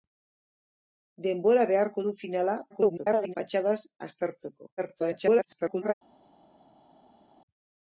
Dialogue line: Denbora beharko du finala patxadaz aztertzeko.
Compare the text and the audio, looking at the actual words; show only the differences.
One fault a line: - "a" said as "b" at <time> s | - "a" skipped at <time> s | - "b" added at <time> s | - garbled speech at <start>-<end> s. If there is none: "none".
- garbled speech at 2.7-3.3 s
- garbled speech at 4.8-5.9 s